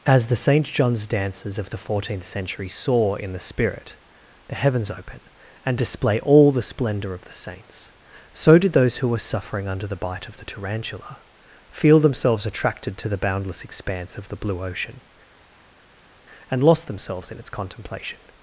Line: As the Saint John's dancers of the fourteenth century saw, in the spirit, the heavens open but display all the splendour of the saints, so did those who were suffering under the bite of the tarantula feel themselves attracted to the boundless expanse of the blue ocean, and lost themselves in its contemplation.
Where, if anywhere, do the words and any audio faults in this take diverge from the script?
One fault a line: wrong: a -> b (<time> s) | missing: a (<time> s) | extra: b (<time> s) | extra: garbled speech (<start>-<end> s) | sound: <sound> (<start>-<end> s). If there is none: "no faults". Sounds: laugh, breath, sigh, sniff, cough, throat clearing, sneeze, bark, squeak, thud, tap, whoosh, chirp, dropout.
wrong: but -> and (5.6 s)